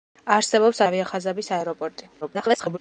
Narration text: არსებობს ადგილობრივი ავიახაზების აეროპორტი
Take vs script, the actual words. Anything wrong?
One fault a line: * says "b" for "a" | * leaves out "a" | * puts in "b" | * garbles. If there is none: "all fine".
* leaves out "ადგილობრივი"
* garbles